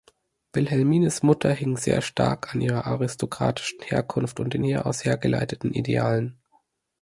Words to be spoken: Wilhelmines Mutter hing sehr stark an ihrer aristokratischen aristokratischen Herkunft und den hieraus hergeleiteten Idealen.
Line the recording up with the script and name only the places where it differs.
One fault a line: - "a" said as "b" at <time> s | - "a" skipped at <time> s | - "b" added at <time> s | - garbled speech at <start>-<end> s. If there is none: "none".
- "aristokratischen" skipped at 3.8 s